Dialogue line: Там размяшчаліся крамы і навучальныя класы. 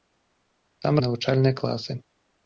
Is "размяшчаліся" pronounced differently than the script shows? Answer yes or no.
yes